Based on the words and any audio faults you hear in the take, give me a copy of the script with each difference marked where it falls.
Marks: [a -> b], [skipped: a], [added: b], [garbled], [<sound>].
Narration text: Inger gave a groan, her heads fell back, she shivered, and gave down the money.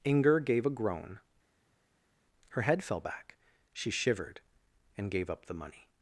Inger gave a groan, her [heads -> head] fell back, she shivered, and gave [down -> up] the money.